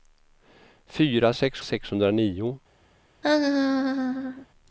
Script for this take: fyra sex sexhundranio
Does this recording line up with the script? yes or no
yes